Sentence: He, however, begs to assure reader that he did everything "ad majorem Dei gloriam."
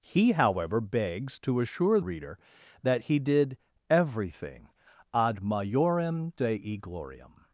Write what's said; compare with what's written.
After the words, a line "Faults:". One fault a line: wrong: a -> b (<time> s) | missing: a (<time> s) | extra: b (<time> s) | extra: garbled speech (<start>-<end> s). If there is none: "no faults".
He, however, begs to assure reader that he did everything "ad majorem Dei gloriam."
Faults:
no faults